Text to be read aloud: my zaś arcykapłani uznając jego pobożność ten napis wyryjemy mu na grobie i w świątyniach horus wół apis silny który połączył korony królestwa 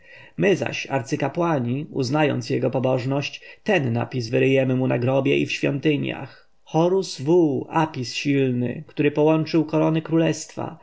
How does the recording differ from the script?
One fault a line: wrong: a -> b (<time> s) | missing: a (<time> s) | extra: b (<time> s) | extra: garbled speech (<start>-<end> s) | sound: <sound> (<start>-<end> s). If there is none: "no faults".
no faults